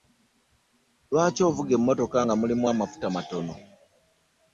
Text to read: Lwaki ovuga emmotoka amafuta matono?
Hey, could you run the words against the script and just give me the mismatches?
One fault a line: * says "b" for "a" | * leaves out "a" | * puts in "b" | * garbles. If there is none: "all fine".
* puts in "nga mulimu"